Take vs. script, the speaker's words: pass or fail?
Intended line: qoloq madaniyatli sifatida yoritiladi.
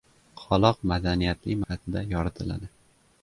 pass